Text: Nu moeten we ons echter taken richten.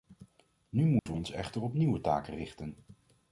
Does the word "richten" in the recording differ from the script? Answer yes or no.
no